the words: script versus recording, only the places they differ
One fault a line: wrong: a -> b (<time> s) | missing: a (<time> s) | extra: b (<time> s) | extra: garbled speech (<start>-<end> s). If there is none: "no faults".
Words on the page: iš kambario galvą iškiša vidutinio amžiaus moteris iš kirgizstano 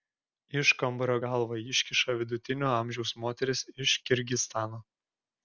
no faults